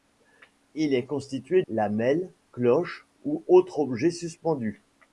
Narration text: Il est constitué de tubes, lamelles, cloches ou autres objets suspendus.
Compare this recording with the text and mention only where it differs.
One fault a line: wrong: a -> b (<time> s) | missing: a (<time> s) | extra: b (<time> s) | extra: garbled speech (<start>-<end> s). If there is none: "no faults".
missing: de tubes (1.6 s)